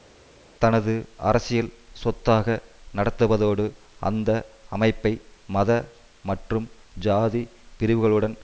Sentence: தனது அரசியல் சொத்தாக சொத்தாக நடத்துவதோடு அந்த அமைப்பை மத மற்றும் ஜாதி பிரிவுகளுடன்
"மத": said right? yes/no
yes